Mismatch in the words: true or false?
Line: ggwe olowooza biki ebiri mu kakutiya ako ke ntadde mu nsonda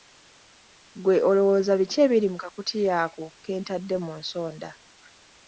false